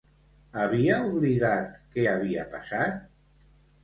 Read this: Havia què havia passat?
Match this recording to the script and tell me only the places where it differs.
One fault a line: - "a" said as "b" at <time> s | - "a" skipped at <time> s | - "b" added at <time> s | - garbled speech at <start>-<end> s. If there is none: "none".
- "oblidat" added at 1.1 s